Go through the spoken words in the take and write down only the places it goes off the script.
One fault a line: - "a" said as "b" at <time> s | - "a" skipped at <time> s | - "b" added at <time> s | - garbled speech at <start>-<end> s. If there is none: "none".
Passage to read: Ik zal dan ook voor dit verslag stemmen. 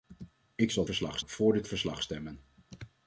- "dan" said as "verslag" at 0.8 s